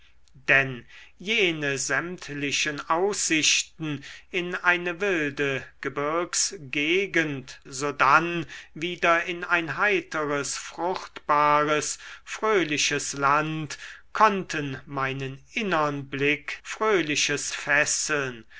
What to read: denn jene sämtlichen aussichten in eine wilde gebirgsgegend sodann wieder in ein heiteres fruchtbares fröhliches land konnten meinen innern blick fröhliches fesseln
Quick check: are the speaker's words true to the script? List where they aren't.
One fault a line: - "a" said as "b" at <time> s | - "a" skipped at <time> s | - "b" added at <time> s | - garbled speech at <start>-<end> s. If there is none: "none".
none